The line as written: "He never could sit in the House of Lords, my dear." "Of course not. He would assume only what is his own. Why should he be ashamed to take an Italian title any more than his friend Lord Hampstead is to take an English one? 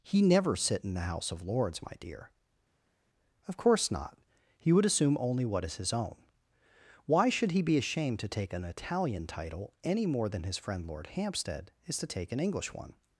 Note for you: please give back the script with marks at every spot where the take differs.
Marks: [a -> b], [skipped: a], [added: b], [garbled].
"He never [skipped: could] sit in the House of Lords, my dear." "Of course not. He would assume only what is his own. Why should he be ashamed to take an Italian title any more than his friend Lord Hampstead is to take an English one?